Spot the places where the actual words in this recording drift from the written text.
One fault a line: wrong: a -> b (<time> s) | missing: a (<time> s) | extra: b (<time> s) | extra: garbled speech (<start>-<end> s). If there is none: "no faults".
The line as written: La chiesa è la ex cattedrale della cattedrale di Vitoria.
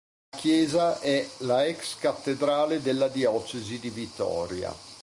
wrong: cattedrale -> diocesi (3.1 s)